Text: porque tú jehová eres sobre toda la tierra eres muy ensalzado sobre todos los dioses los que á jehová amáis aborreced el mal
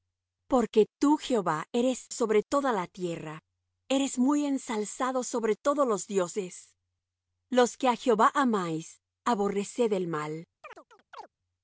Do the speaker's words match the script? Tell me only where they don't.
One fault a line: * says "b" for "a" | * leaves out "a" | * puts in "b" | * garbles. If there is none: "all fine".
all fine